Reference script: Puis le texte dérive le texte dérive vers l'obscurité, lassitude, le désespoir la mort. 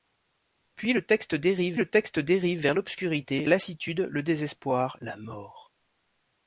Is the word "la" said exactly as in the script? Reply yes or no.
yes